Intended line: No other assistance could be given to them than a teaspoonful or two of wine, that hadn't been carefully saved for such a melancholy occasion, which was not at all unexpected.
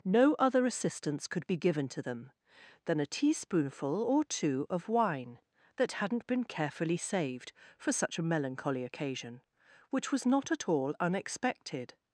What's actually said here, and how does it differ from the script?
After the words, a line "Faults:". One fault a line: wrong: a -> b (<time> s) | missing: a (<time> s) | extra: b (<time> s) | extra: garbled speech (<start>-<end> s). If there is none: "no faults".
No other assistance could be given to them than a teaspoonful or two of wine, that hadn't been carefully saved for such a melancholy occasion, which was not at all unexpected.
Faults:
no faults